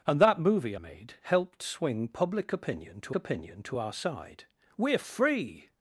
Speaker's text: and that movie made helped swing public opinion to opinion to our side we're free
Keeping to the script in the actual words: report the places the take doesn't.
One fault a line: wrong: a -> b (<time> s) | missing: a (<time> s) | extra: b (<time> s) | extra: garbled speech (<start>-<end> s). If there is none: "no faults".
no faults